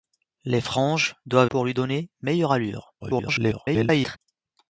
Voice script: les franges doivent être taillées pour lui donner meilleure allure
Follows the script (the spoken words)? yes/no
no